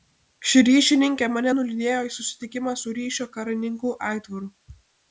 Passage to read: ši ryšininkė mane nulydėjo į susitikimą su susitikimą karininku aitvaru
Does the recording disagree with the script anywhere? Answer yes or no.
yes